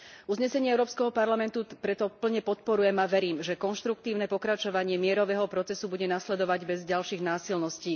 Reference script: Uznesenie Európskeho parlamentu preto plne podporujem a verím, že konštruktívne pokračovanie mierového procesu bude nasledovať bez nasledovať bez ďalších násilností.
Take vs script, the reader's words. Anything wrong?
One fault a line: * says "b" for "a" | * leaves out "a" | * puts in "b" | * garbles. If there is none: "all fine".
* leaves out "nasledovať bez"